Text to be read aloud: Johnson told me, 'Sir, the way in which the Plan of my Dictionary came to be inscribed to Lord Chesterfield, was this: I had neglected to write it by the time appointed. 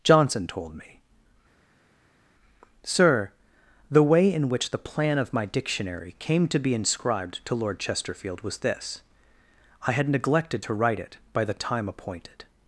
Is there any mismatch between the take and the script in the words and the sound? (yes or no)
no